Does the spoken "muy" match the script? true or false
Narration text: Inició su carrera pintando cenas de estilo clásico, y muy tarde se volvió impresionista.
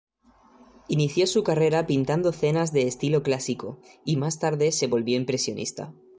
false